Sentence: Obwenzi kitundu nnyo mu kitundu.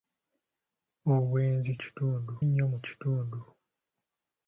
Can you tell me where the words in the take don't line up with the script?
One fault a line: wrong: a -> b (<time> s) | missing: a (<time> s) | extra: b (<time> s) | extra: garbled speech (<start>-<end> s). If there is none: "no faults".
no faults